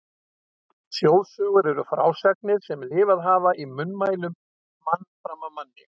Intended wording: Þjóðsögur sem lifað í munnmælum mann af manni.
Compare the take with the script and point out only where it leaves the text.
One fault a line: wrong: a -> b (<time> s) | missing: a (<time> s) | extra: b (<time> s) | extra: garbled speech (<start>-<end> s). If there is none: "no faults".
extra: eru frásagnir (1.7 s)
extra: hafa (3.3 s)
extra: fram (5.1 s)